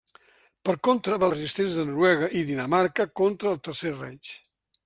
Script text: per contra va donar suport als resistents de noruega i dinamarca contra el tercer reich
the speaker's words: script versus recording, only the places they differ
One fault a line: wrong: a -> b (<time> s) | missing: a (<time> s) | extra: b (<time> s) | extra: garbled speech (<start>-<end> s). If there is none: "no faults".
missing: donar suport als (1.3 s)